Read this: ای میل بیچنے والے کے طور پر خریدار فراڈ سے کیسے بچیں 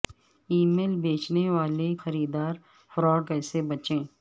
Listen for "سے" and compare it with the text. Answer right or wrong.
wrong